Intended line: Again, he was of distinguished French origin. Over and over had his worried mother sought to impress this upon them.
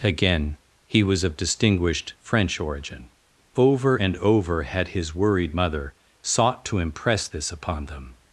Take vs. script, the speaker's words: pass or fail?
pass